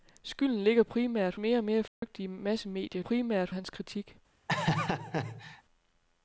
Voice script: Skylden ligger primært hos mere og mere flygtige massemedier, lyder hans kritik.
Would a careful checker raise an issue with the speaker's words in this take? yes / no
yes